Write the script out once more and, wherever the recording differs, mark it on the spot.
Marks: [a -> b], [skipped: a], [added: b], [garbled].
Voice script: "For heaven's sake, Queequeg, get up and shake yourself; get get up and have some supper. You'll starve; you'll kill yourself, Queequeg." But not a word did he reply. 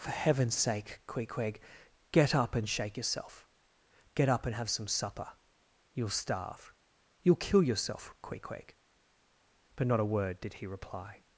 "For heaven's sake, Queequeg, get up and shake yourself; get [skipped: get] up and have some supper. You'll starve; you'll kill yourself, Queequeg." But not a word did he reply.